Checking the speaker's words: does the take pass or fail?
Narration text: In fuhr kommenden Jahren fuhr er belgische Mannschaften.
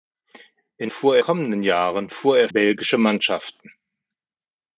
pass